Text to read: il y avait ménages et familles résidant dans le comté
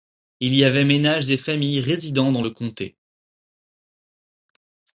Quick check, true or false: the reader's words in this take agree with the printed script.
true